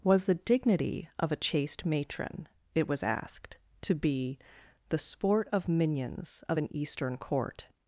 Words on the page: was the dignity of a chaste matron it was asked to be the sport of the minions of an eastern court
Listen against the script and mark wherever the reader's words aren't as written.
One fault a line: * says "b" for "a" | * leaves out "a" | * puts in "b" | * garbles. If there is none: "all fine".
* leaves out "the"